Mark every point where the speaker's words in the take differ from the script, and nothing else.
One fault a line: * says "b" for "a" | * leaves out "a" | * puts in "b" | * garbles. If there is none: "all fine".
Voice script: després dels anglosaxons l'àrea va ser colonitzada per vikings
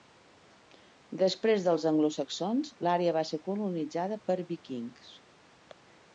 all fine